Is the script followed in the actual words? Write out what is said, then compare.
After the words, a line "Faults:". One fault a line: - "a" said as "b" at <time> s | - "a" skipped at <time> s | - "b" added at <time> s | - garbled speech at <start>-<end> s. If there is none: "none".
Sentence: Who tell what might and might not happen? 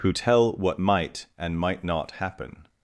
Who tell what might and might not happen?
Faults:
none